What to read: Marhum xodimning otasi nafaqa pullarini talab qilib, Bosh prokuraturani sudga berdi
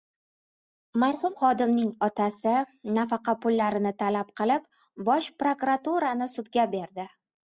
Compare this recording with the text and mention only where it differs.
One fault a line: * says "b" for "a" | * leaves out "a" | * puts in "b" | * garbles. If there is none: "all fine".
all fine